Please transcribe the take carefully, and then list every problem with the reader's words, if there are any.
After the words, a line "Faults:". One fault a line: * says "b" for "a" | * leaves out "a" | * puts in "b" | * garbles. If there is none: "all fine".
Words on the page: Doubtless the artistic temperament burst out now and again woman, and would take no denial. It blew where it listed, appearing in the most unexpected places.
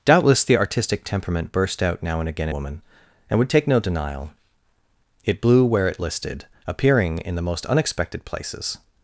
Doubtless the artistic temperament burst out now and again woman, and would take no denial. It blew where it listed, appearing in the most unexpected places.
Faults:
all fine